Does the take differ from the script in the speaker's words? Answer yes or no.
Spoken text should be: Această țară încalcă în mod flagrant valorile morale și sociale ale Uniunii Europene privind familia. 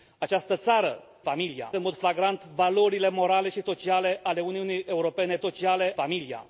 yes